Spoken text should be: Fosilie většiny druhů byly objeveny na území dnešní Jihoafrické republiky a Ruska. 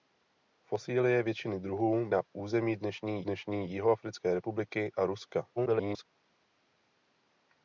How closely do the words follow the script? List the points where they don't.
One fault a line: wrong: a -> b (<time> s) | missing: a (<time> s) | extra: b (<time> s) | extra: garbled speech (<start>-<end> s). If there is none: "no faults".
missing: byly objeveny (2.1 s)
extra: dnešní (3.2 s)
extra: garbled speech (5.6-6.1 s)